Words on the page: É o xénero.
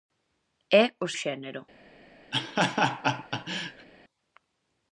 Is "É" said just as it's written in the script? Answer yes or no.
yes